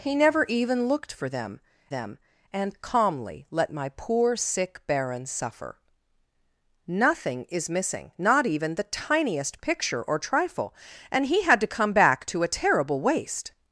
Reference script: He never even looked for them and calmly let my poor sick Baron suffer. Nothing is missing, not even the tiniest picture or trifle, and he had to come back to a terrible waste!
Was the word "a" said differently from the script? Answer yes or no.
no